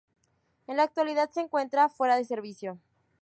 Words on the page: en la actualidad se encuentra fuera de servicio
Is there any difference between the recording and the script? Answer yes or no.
no